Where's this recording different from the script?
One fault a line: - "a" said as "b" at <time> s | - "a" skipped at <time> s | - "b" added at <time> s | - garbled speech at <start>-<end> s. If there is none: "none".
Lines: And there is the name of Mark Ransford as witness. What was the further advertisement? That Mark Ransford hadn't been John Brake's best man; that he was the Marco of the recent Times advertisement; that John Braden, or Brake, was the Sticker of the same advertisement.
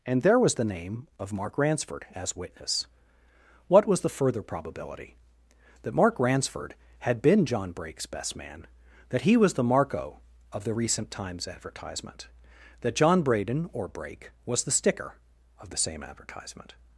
- "is" said as "was" at 0.4 s
- "advertisement" said as "probability" at 4.4 s
- "hadn't" said as "had" at 7.0 s